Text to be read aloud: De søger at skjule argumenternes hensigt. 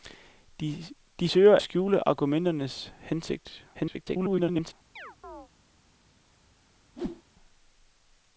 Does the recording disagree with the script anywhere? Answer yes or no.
yes